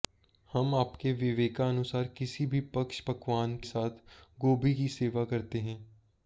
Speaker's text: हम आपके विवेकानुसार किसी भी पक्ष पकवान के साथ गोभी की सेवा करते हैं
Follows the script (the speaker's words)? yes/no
no